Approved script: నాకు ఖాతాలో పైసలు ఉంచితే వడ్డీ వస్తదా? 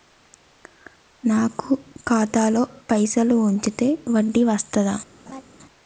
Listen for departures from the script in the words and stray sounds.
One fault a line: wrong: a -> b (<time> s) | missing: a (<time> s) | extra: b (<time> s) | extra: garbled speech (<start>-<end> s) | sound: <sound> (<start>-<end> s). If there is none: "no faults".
sound: laugh (5.3-5.4 s)